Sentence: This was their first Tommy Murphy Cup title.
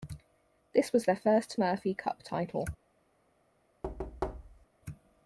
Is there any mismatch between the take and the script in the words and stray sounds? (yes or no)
yes